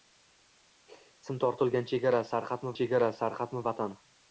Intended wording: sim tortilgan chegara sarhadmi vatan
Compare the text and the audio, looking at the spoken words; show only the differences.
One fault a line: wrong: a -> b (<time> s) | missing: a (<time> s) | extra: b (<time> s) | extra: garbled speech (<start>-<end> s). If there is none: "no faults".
extra: chegara sarhadmi (2.8 s)